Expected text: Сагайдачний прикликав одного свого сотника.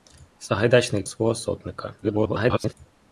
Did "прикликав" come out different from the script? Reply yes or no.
yes